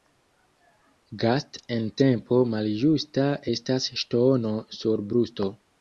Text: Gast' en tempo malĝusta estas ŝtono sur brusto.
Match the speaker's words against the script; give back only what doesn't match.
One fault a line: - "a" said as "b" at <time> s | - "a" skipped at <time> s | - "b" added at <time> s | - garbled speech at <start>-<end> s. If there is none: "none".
none